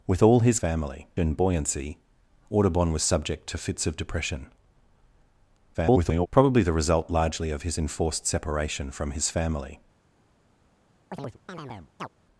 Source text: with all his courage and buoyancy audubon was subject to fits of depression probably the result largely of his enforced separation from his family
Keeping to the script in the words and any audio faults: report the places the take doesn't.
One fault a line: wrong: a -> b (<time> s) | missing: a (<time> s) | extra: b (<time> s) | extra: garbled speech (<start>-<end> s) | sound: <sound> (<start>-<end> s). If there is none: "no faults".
wrong: courage -> family (0.6 s)
extra: garbled speech (5.7-6.3 s)
sound: chirp (11.1-12.1 s)